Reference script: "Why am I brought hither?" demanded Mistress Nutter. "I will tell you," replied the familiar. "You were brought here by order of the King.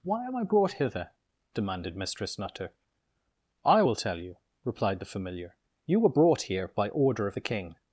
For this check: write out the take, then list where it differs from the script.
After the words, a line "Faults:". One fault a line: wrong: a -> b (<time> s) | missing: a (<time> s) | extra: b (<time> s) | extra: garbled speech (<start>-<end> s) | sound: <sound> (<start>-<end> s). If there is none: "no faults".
"Why am I brought hither?" demanded Mistress Nutter. "I will tell you," replied the familiar. "You were brought here by order of the King.
Faults:
no faults